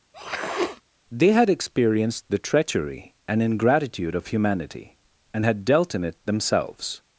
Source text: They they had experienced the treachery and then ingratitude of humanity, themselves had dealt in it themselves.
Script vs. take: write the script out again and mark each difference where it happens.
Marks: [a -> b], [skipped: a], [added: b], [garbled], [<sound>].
[sniff] They [skipped: they] had experienced the treachery and [skipped: then] ingratitude of humanity, [themselves -> and] had dealt in it themselves.